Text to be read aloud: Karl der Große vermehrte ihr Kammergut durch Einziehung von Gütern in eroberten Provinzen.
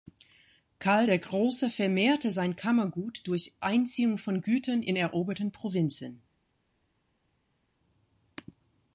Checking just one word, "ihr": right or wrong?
wrong